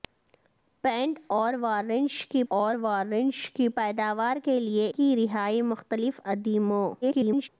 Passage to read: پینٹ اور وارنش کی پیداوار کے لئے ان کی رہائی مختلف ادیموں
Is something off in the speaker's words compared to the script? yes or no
yes